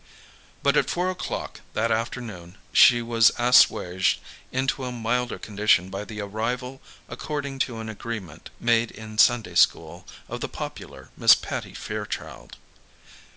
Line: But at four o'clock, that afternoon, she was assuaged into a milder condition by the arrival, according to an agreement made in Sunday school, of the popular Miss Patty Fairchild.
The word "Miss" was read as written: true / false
true